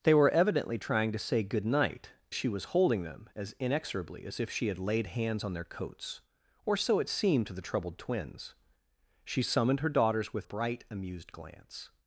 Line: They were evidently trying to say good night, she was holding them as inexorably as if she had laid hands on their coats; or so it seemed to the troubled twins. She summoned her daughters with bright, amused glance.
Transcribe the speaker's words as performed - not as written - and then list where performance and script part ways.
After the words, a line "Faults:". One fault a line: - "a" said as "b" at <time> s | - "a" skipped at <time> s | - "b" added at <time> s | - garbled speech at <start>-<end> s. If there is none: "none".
They were evidently trying to say good night, she was holding them as inexorably as if she had laid hands on their coats; or so it seemed to the troubled twins. She summoned her daughters with bright, amused glance.
Faults:
none